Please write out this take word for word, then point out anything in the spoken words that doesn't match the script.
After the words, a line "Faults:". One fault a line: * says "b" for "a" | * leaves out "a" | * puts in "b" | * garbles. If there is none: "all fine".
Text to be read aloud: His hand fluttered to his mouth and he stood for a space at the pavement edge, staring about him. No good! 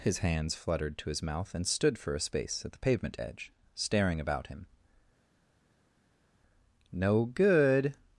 His hands fluttered to his mouth and stood for a space at the pavement edge, staring about him. No good!
Faults:
* says "hands" for "hand"
* leaves out "he"